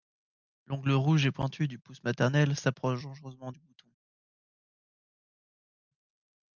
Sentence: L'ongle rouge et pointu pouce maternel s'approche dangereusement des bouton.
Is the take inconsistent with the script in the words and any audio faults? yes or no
yes